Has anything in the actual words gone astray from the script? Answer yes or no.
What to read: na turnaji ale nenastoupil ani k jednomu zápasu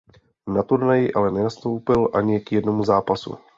no